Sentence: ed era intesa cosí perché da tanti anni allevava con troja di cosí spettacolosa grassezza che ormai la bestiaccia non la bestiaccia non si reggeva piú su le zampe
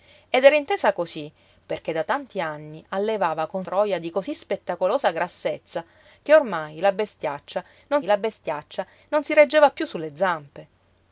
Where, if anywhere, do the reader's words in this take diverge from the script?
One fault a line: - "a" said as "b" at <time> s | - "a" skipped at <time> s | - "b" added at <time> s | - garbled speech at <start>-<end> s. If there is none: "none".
none